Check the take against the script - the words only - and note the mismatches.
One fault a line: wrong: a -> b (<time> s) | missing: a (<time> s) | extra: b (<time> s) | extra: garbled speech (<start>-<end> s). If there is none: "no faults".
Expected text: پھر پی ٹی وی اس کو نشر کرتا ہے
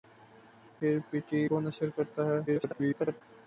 missing: وی اس (1.4 s)
extra: garbled speech (2.5-3.2 s)